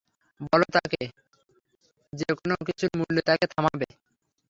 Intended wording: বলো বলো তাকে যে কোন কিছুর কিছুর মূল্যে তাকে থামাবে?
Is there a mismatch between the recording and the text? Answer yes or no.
yes